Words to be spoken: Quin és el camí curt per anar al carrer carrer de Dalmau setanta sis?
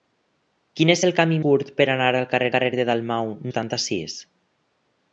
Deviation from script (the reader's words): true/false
false